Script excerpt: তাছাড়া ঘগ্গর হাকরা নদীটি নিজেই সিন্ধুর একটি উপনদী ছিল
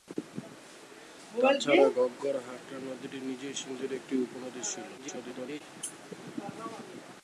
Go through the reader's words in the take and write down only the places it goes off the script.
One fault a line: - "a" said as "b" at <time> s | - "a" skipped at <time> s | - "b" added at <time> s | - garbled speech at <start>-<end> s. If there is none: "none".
- garbled speech at 5.0-5.6 s